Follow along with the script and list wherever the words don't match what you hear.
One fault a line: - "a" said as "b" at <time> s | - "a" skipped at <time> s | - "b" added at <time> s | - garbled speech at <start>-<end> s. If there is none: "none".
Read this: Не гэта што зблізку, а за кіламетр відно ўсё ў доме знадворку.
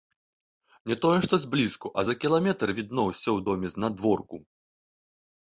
- "гэта" said as "тое" at 1.0 s